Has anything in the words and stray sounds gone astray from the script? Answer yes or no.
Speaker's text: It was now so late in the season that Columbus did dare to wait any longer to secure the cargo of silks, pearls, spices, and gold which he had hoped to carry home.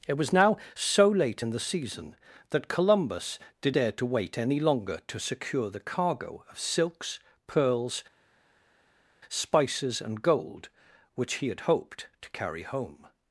no